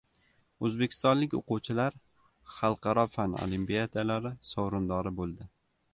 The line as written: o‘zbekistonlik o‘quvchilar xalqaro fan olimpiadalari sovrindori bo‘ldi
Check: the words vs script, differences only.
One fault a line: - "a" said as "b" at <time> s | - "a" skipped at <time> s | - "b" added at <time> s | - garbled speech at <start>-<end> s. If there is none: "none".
none